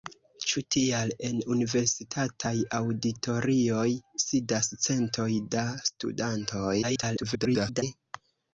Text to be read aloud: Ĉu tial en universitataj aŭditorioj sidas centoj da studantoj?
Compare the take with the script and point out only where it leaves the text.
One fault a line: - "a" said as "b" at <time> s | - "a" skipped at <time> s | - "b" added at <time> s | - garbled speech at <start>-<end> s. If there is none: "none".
- garbled speech at 6.8-7.8 s